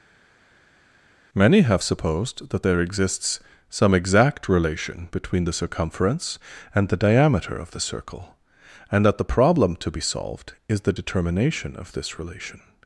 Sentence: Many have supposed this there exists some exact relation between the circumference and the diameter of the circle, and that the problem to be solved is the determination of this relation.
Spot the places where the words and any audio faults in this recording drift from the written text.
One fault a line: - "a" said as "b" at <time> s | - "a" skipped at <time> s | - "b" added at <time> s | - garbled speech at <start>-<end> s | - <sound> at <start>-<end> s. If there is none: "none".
- "this" said as "that" at 2.5 s